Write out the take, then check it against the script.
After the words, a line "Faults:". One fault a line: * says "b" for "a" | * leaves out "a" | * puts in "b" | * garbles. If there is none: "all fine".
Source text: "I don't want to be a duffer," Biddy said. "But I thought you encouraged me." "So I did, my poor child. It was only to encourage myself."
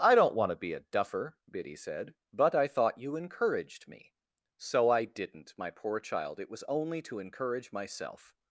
"I don't want to be a duffer," Biddy said. "But I thought you encouraged me." "So I didn't, my poor child. It was only to encourage myself."
Faults:
* says "didn't" for "did"